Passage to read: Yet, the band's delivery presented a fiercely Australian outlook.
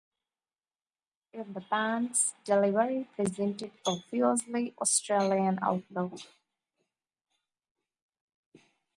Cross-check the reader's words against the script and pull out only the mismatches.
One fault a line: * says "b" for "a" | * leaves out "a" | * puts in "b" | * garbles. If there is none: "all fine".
all fine